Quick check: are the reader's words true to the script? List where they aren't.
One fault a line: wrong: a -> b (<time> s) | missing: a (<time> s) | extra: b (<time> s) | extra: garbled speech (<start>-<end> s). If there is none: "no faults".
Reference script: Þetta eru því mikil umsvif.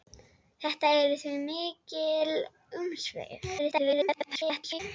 extra: garbled speech (3.6-4.8 s)